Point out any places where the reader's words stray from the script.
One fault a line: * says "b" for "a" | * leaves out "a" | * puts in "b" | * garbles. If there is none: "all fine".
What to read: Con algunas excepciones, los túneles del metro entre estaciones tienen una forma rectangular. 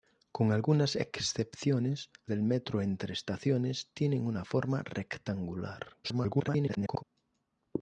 * leaves out "los túneles"
* garbles